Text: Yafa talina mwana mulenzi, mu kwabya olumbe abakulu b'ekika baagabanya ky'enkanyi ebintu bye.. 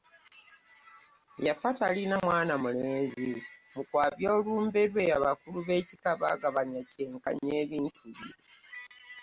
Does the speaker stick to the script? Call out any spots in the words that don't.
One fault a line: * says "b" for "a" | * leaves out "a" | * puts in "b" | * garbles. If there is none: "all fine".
* puts in "lwe"